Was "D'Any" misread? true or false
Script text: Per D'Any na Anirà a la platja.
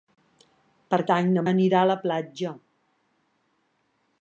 false